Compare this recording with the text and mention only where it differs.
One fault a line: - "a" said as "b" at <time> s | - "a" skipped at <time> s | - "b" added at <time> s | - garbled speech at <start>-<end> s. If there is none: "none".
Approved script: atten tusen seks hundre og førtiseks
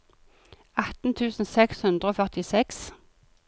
none